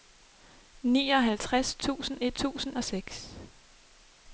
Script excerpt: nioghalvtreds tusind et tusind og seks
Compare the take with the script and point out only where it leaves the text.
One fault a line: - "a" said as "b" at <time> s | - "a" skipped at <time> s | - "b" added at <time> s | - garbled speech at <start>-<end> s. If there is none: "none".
none